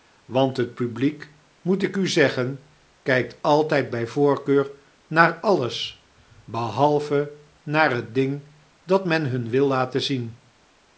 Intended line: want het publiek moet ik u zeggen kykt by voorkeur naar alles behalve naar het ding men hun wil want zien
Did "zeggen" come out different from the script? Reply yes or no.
no